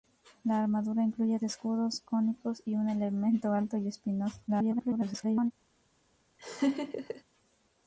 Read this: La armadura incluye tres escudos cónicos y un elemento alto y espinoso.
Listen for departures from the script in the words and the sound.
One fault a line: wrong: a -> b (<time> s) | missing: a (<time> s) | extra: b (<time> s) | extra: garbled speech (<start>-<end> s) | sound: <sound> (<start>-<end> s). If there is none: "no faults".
missing: tres (1.4 s)
extra: garbled speech (4.5-5.5 s)
sound: laugh (6.4-7.2 s)